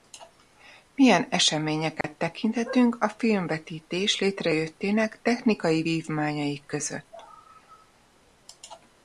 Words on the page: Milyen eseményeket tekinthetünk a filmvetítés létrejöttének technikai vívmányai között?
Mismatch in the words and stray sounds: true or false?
true